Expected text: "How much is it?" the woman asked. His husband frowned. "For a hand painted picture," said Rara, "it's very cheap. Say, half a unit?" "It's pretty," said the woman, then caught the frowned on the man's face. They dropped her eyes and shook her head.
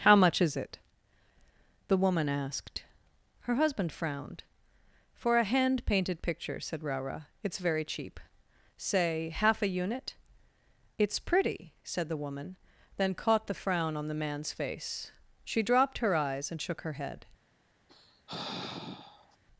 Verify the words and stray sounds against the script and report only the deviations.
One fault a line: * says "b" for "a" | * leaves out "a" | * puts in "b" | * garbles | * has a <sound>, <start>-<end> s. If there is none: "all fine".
* says "Her" for "His"
* says "frown" for "frowned"
* says "She" for "They"
* has a sigh, 17.9-19.4 s